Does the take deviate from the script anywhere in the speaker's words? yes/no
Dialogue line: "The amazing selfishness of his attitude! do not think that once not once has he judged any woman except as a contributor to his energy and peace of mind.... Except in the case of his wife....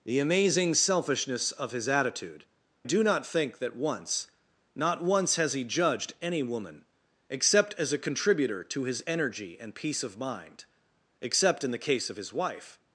no